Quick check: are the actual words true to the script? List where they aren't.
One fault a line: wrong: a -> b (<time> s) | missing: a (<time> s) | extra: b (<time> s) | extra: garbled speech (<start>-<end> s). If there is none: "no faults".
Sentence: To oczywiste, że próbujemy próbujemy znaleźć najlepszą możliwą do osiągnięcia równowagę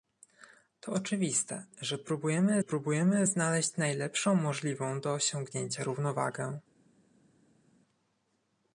no faults